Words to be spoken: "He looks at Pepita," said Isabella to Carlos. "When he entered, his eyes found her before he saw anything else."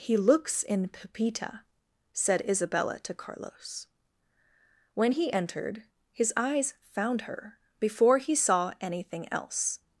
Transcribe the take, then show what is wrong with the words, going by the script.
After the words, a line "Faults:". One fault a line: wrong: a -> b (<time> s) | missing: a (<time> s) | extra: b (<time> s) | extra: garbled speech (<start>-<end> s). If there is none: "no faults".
"He looks in Pepita," said Isabella to Carlos. "When he entered, his eyes found her before he saw anything else."
Faults:
wrong: at -> in (0.6 s)